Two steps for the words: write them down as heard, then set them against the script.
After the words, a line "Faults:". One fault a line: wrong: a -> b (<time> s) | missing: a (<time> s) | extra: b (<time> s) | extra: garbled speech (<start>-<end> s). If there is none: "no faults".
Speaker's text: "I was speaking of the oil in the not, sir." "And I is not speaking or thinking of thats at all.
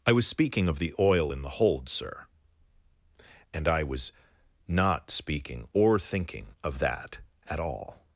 "I was speaking of the oil in the hold, sir." "And I was not speaking or thinking of that at all.
Faults:
wrong: not -> hold (1.5 s)
wrong: is -> was (3.8 s)
wrong: thats -> that (6.8 s)